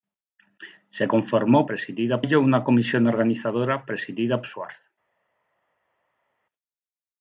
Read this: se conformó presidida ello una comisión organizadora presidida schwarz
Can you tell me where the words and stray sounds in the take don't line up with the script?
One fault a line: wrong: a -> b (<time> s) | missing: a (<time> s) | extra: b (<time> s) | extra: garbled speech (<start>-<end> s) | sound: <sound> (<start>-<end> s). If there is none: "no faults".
no faults